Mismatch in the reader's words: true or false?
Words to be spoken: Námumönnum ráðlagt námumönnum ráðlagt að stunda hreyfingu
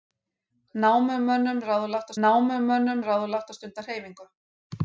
false